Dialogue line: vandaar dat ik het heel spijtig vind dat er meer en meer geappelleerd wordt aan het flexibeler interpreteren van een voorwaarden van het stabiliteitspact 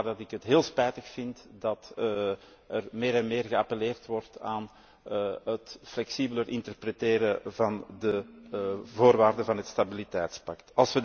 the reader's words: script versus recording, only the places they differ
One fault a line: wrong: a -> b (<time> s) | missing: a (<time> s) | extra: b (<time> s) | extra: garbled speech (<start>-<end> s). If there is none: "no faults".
wrong: een -> de (8.0 s)